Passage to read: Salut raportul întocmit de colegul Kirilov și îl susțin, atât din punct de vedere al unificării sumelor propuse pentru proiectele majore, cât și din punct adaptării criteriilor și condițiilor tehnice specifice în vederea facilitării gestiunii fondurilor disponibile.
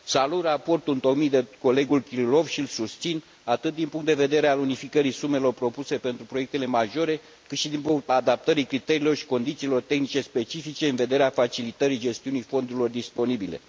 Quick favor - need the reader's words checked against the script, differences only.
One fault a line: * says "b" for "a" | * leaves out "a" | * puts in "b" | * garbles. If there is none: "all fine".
all fine